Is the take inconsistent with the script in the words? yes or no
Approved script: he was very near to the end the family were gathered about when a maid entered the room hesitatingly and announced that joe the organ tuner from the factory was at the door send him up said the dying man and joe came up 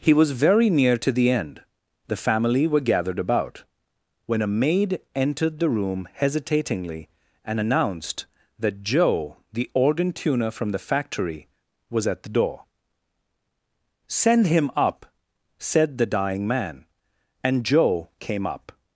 no